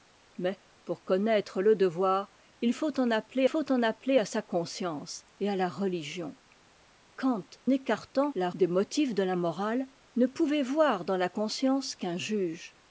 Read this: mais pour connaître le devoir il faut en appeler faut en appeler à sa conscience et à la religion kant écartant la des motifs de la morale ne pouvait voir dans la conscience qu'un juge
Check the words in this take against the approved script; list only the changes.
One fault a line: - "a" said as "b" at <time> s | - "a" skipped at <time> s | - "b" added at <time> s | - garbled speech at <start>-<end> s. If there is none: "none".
none